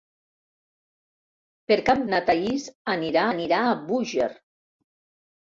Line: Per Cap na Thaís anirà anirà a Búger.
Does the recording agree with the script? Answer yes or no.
yes